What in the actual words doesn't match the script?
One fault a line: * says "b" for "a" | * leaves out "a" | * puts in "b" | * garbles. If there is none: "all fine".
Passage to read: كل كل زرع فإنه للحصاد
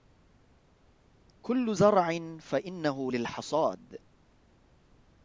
* leaves out "كل"